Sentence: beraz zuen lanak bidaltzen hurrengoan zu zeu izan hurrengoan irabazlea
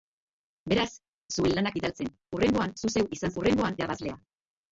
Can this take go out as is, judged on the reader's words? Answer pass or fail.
pass